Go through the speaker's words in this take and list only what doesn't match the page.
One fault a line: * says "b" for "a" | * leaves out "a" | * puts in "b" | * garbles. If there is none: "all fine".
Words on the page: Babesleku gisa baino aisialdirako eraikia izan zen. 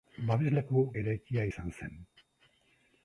* leaves out "gisa baino aisialdirako"